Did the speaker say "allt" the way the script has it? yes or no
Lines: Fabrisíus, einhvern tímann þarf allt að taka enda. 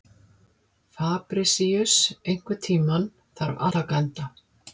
no